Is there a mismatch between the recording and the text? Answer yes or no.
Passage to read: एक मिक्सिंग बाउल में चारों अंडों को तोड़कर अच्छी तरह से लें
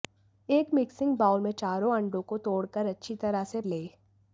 no